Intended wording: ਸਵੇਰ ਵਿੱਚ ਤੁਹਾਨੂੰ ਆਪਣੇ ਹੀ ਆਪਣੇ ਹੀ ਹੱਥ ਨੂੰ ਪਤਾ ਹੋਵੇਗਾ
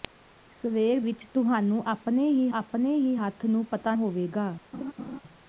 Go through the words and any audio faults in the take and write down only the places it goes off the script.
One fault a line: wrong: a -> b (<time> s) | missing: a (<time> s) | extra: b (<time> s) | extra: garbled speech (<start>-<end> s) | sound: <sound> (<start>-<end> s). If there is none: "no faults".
sound: laugh (4.7-5.2 s)